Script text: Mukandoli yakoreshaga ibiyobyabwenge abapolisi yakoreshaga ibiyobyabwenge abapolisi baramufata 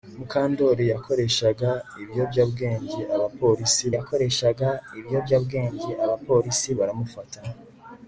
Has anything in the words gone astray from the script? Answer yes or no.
no